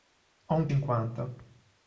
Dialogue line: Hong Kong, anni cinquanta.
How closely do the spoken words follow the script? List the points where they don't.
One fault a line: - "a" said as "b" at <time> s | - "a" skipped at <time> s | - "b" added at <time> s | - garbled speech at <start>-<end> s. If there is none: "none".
- "Kong anni" skipped at 0.7 s